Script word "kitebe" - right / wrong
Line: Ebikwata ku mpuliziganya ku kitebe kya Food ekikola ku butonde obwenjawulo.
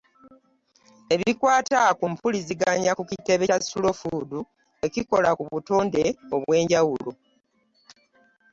right